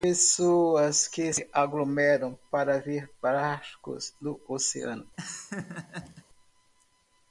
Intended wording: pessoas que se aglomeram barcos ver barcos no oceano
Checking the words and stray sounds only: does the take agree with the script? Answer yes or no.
no